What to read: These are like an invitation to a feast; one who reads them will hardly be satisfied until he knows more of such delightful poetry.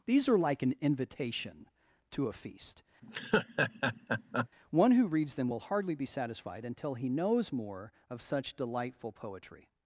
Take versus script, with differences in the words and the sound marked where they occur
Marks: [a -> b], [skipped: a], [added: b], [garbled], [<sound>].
These are like an invitation to a feast; [laugh] one who reads them will hardly be satisfied until he knows more of such delightful poetry.